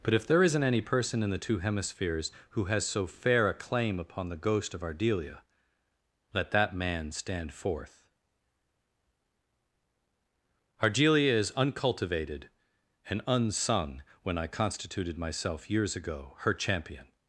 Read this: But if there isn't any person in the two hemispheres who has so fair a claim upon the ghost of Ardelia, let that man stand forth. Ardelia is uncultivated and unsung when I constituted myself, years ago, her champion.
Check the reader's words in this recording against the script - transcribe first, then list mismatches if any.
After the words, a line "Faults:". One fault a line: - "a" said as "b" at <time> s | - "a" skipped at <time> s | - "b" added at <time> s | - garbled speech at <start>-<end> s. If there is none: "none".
But if there isn't any person in the two hemispheres who has so fair a claim upon the ghost of Ardelia, let that man stand forth. Ardelia is uncultivated and unsung when I constituted myself, years ago, her champion.
Faults:
none